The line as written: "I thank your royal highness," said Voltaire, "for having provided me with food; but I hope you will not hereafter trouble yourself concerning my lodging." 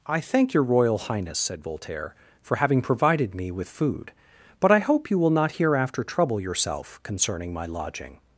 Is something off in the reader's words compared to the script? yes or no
no